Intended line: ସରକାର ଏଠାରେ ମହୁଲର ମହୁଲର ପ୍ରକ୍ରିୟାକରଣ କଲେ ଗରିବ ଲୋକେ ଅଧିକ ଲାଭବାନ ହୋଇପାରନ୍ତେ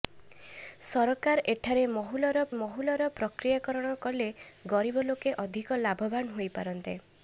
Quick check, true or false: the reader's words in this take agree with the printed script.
true